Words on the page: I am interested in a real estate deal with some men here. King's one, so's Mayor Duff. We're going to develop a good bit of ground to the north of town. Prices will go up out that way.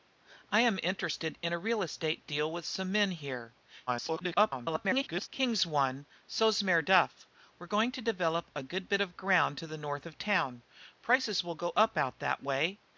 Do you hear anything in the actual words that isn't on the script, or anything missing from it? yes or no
yes